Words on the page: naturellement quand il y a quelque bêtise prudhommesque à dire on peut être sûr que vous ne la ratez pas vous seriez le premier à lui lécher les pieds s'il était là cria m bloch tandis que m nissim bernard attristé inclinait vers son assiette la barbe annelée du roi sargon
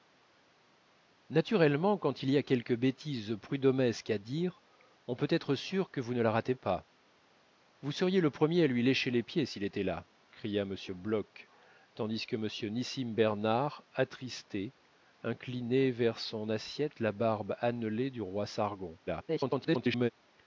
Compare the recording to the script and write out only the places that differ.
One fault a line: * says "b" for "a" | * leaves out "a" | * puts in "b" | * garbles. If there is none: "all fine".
* garbles